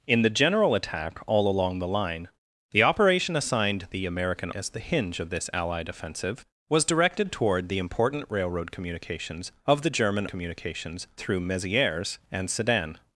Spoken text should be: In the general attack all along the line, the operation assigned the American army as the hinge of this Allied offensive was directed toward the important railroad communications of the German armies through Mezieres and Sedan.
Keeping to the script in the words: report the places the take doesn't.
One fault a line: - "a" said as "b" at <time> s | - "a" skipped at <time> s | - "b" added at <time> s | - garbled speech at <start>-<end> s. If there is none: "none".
- "army" skipped at 4.5 s
- "armies" said as "communications" at 10.3 s